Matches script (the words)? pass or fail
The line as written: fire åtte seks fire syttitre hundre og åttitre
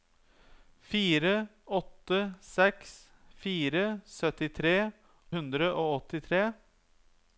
pass